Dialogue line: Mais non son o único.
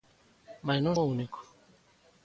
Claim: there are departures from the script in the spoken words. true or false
true